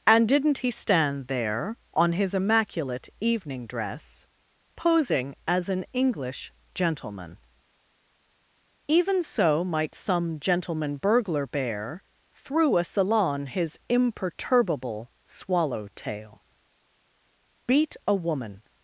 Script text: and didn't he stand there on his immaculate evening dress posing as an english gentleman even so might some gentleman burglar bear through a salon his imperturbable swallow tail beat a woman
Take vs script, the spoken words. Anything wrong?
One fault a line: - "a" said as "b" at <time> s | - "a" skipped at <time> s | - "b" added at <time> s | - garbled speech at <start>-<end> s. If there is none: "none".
none